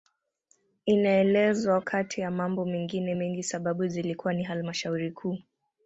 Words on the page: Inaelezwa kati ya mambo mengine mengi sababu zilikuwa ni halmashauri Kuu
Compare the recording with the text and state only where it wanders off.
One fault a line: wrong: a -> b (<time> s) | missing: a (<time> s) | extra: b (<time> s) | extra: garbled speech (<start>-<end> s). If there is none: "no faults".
no faults